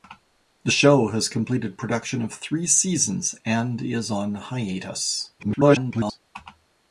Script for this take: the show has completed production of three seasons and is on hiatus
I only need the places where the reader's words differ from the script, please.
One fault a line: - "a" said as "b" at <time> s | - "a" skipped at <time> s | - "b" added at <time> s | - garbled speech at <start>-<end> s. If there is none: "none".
- garbled speech at 5.4-6.2 s